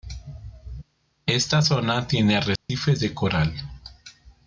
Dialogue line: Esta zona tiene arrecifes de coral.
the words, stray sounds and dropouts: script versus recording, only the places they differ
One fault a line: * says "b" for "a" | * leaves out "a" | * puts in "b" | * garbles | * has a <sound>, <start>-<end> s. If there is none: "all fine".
* has a dropout, 2.6-2.7 s